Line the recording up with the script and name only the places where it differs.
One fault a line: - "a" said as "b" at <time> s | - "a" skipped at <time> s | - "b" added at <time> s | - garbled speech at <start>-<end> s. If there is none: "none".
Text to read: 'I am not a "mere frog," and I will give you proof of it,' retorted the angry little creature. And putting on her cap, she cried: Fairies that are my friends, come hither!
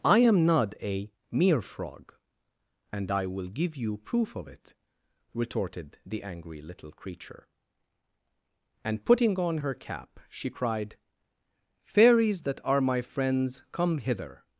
none